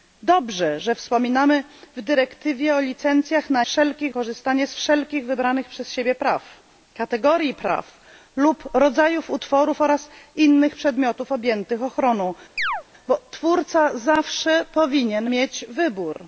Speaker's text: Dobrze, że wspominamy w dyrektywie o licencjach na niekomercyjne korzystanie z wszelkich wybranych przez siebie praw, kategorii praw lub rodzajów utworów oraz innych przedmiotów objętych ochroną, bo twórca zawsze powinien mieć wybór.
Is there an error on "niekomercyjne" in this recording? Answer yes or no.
yes